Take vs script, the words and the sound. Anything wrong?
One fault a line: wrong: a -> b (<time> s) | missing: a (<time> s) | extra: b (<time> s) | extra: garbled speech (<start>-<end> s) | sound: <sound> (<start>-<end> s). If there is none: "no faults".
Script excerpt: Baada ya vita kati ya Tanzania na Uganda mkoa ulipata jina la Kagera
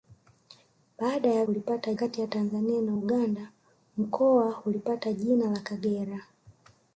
wrong: vita -> ulipata (1.5 s)